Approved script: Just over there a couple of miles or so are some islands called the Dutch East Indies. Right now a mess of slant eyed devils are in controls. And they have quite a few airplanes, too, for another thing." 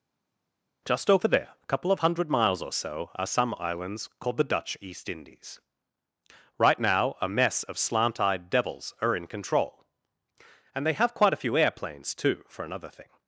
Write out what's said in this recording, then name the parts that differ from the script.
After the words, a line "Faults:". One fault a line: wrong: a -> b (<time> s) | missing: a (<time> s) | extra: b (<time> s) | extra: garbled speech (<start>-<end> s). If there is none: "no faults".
Just over there a couple of hundred miles or so are some islands called the Dutch East Indies. Right now a mess of slant eyed devils are in control. And they have quite a few airplanes, too, for another thing."
Faults:
extra: hundred (2.0 s)
wrong: controls -> control (9.3 s)